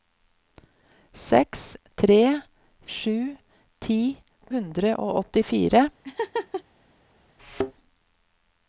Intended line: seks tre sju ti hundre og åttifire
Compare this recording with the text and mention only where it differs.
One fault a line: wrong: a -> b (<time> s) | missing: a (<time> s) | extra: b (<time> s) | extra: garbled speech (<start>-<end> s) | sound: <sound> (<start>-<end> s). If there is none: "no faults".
sound: laugh (6.0-6.6 s)
sound: thud (7.4-7.7 s)